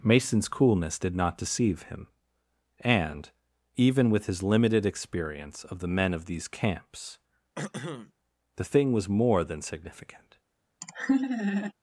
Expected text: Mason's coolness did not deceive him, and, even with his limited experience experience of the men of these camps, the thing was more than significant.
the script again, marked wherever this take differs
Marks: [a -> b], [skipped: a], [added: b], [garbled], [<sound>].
Mason's coolness did not deceive him, and, even with his limited experience [skipped: experience] of the men of these camps, [throat clearing] the thing was more than significant. [laugh]